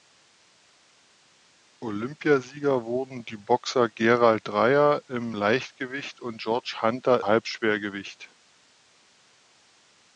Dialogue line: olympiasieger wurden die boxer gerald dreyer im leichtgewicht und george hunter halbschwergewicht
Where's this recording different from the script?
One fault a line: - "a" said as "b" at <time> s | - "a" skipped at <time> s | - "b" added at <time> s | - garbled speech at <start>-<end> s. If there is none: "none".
none